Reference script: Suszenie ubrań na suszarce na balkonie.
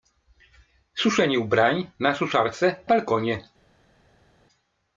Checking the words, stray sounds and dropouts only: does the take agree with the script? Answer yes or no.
no